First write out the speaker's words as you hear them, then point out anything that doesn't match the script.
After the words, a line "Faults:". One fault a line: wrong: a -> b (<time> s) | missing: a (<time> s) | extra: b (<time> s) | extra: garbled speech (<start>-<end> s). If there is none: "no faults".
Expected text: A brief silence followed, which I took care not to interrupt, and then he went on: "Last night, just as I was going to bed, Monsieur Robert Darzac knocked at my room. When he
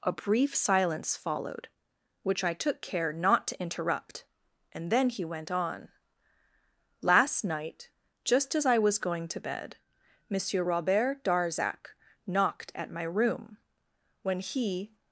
A brief silence followed, which I took care not to interrupt, and then he went on: "Last night, just as I was going to bed, Monsieur Robert Darzac knocked at my room. When he
Faults:
no faults